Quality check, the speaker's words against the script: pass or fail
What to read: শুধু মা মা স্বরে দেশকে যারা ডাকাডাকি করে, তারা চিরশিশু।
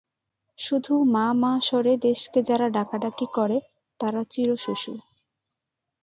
pass